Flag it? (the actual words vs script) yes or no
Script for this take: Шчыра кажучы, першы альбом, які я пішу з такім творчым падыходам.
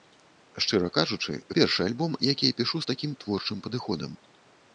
no